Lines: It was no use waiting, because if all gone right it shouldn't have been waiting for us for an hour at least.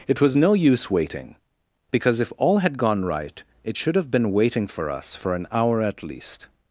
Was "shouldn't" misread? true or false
true